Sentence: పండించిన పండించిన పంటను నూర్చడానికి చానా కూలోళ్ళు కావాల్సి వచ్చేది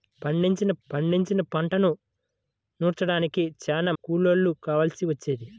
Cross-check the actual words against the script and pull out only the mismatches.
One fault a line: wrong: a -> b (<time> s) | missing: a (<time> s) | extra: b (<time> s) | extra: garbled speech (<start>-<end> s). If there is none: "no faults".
no faults